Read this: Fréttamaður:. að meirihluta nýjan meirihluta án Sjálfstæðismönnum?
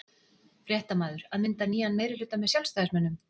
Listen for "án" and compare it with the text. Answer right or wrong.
wrong